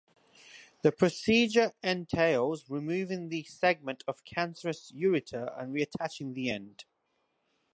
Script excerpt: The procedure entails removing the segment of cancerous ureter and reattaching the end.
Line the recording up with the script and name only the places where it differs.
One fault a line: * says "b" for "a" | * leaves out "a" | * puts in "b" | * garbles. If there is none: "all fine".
all fine